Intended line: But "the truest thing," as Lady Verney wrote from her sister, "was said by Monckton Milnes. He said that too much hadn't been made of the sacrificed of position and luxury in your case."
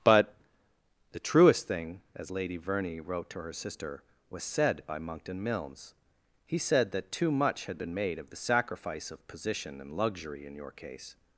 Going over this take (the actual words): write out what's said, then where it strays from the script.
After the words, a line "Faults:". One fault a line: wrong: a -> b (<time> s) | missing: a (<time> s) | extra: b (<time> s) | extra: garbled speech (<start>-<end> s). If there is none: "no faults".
But "the truest thing," as Lady Verney wrote to her sister, "was said by Monckton Milnes. He said that too much had been made of the sacrifice of position and luxury in your case."
Faults:
wrong: from -> to (3.3 s)
wrong: hadn't -> had (7.6 s)
wrong: sacrificed -> sacrifice (8.4 s)